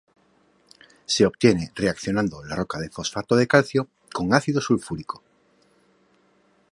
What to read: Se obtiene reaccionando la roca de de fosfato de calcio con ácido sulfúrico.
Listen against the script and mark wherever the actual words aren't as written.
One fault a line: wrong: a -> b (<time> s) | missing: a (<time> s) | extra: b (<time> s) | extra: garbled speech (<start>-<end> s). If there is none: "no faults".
missing: de (2.9 s)